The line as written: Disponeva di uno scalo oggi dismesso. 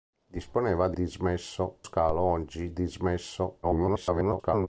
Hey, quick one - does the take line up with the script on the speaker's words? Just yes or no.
no